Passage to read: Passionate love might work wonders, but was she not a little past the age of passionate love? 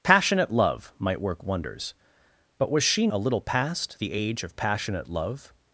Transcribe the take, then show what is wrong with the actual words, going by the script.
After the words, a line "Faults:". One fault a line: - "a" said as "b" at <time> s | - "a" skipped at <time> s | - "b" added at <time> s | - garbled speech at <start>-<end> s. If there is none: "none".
Passionate love might work wonders, but was she a little past the age of passionate love?
Faults:
- "not" skipped at 3.1 s